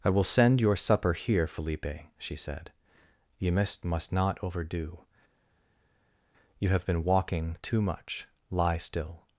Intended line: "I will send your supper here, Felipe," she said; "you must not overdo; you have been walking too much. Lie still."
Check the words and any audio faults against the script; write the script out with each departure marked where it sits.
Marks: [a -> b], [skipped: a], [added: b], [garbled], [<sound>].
"I will send your supper here, Felipe," she said; "you must [added: must] not overdo; you have been walking too much. Lie still."